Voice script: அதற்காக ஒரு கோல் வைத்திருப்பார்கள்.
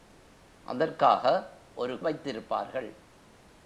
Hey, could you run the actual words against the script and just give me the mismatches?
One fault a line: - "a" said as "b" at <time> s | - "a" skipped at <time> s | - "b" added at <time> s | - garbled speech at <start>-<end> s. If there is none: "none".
- "கோல்" skipped at 2.0 s